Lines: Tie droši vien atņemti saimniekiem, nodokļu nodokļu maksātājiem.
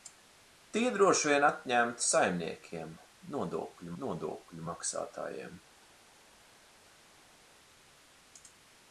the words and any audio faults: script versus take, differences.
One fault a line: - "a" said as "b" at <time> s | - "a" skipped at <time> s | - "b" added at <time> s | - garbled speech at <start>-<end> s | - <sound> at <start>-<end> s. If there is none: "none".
none